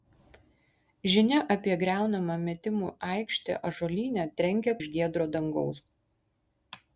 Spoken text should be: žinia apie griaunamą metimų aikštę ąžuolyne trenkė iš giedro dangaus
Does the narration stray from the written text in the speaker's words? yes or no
no